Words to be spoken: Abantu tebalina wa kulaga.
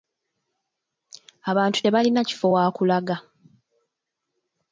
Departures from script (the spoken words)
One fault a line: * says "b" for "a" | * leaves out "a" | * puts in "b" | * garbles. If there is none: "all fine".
* puts in "kifo"